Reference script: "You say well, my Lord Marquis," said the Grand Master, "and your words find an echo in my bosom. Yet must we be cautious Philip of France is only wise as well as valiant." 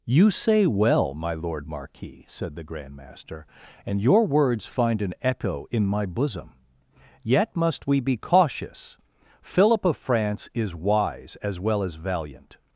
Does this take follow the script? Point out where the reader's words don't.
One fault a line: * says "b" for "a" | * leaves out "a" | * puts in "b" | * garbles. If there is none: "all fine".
* leaves out "only"